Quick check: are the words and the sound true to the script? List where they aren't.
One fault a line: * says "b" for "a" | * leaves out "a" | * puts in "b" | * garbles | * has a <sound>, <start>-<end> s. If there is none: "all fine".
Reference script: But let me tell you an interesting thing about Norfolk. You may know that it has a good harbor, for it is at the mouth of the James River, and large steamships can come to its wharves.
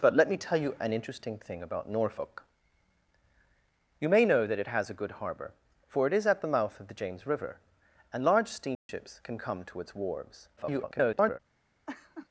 * has a dropout, 8.7-8.9 s
* garbles
* has a laugh, 11.9-12.3 s